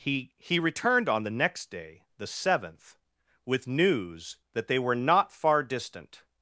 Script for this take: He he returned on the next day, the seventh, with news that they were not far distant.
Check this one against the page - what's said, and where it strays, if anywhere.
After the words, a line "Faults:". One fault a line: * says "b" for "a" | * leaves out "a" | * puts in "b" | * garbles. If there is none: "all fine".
He he returned on the next day, the seventh, with news that they were not far distant.
Faults:
all fine